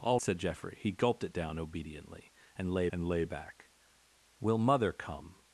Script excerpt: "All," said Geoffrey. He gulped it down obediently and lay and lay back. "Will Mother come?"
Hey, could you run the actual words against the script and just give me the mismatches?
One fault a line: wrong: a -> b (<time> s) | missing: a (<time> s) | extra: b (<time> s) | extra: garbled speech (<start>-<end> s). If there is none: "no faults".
no faults